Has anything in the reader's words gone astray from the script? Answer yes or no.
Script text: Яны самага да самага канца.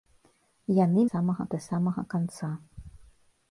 no